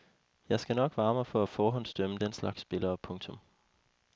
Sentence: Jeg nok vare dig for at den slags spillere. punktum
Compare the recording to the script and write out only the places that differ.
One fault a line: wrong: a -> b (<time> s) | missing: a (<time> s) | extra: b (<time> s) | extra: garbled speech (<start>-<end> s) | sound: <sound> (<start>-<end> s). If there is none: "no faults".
extra: skal (0.6 s)
wrong: dig -> mig (1.1 s)
extra: forhåndsdømme (1.5 s)